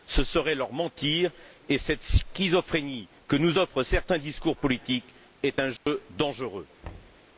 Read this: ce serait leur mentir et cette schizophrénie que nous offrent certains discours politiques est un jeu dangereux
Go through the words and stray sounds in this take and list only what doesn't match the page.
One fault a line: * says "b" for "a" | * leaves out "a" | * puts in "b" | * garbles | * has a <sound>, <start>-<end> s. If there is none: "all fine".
* has a dropout, 5.8-5.9 s
* has a thud, 6.8-7.2 s